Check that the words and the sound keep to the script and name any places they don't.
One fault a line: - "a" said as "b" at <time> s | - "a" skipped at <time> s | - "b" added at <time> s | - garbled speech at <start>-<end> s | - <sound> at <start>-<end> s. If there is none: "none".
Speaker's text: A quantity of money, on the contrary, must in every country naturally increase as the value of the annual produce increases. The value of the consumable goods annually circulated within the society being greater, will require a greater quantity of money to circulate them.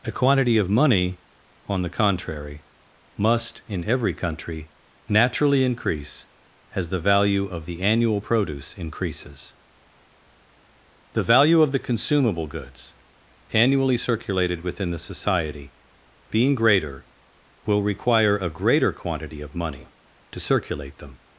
none